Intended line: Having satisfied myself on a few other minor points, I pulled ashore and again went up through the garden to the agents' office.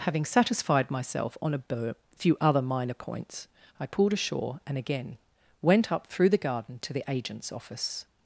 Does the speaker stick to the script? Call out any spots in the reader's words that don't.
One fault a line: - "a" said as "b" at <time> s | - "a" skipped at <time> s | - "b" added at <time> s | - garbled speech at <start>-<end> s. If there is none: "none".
none